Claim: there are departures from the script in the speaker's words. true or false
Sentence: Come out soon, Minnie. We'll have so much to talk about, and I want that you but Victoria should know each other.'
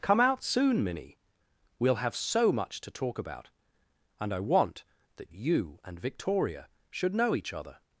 true